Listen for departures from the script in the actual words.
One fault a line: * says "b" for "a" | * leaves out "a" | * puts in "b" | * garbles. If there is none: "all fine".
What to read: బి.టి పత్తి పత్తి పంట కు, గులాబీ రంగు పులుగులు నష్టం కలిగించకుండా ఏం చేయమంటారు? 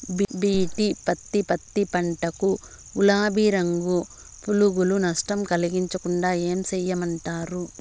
all fine